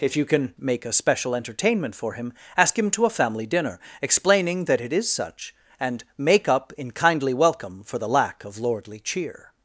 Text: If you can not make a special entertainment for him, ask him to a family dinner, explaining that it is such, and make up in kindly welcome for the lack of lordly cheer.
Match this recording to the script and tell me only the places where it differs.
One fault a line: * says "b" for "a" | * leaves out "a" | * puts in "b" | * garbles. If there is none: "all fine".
* leaves out "not"